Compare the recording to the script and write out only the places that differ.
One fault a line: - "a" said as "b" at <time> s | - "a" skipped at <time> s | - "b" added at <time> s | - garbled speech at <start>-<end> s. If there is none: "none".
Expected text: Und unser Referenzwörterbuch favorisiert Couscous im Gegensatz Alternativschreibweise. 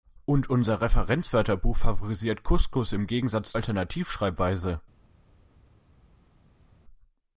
none